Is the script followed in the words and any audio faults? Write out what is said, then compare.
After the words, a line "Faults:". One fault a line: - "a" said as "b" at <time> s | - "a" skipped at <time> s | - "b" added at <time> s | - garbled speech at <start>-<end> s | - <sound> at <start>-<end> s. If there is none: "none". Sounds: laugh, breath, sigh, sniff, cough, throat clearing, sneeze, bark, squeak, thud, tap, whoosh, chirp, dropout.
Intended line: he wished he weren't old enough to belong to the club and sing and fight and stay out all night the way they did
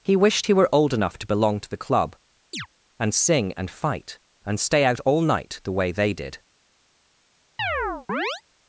he wished he were old enough to belong to the club and sing and fight and stay out all night the way they did
Faults:
- "weren't" said as "were" at 0.5 s
- chirp at 2.5-2.7 s
- chirp at 7.6-8.4 s